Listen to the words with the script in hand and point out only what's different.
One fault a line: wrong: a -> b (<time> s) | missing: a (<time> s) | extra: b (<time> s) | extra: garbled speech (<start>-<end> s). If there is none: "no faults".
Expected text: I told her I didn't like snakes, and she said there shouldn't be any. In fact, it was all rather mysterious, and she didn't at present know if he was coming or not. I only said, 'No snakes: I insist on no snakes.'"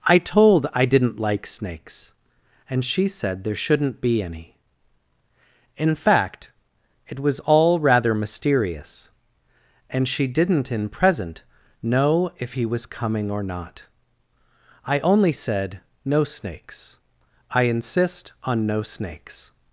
missing: her (0.7 s)
wrong: at -> in (10.7 s)